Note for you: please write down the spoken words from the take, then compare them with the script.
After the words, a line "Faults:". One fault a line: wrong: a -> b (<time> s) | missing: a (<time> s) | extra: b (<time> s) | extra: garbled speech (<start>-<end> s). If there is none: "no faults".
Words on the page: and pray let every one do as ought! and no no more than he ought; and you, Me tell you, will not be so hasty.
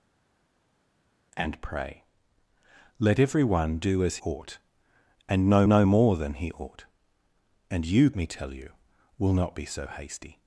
and pray let every one do as ought! and no no more than he ought; and you, Me tell you, will not be so hasty.
Faults:
no faults